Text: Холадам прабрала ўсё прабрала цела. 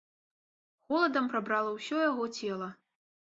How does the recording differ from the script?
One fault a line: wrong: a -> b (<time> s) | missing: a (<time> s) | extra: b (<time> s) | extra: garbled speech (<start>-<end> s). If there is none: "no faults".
wrong: прабрала -> яго (2.1 s)